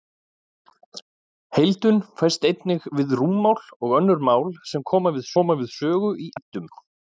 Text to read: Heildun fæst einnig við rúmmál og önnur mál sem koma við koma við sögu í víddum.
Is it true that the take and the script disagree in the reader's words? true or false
false